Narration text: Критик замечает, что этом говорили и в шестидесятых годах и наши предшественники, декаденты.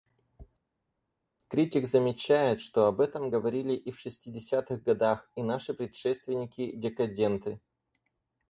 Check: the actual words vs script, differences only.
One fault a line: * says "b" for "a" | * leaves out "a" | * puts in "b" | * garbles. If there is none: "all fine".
* puts in "об"